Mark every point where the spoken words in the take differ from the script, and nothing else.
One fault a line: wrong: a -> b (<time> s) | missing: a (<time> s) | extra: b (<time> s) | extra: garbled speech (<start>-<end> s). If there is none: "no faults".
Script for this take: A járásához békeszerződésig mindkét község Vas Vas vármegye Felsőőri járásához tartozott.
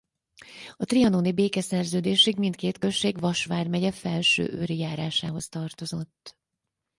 wrong: járásához -> trianoni (0.8 s)
missing: Vas (3.5 s)